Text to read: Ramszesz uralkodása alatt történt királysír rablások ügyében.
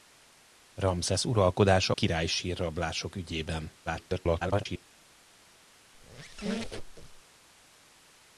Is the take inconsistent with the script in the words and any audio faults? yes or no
yes